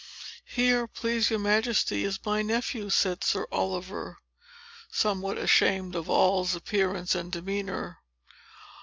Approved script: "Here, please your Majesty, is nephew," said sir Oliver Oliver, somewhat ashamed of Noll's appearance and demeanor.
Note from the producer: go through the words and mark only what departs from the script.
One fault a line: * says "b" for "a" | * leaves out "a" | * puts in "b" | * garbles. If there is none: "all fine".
* puts in "my"
* leaves out "Oliver"